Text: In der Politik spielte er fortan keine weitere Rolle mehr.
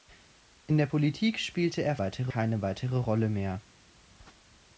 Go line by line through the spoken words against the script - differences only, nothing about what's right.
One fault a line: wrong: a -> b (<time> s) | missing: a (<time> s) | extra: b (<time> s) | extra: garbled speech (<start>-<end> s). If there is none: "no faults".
wrong: fortan -> weitere (2.0 s)